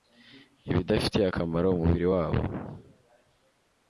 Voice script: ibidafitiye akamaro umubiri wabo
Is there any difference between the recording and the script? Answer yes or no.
no